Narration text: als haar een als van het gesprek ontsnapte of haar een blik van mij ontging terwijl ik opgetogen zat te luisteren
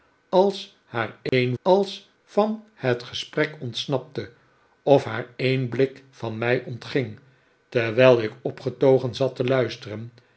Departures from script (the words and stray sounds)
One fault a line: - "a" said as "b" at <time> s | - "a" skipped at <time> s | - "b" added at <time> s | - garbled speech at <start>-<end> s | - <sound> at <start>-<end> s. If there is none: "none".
- dropout at 1.3-1.3 s